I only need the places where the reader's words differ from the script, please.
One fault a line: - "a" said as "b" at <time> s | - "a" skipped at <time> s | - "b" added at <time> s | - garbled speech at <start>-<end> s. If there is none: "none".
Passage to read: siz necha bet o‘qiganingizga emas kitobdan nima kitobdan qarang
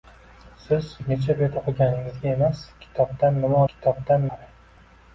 none